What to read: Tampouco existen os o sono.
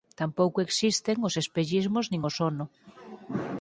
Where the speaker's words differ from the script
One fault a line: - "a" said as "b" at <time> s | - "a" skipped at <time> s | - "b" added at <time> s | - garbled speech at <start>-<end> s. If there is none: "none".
- "espellismos nin" added at 1.4 s